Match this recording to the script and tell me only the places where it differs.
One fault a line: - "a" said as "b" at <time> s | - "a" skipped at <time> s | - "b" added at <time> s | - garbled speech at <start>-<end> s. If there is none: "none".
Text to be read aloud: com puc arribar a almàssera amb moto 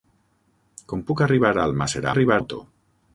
- "amb" said as "arribar" at 2.1 s